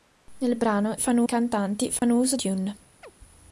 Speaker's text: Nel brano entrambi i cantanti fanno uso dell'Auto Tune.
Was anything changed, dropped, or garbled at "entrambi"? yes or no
yes